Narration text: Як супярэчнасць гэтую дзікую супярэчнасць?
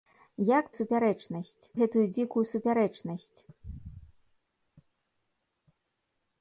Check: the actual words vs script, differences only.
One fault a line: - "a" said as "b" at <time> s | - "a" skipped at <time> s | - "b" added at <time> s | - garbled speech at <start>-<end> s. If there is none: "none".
none